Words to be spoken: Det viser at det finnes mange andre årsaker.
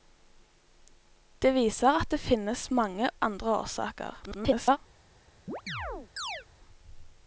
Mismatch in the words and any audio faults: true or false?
true